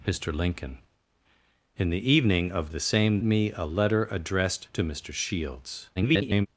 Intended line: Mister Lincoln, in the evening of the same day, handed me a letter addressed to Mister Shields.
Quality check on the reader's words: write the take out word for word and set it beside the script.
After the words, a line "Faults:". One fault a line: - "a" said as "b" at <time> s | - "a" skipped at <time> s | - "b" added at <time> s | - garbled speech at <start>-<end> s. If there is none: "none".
Mister Lincoln, in the evening of the same me a letter addressed to Mister Shields. [garbled]
Faults:
- "day handed" skipped at 3.2 s
- garbled speech at 6.0-6.5 s